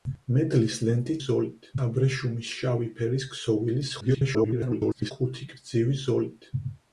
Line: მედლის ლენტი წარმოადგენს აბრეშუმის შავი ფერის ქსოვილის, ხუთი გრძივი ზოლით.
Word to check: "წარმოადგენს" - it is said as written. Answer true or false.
false